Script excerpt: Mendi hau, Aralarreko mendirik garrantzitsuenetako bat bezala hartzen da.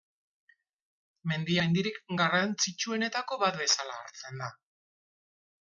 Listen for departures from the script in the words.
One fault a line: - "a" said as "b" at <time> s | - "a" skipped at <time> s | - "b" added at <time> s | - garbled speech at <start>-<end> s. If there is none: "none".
- "hau Aralarreko" skipped at 1.6 s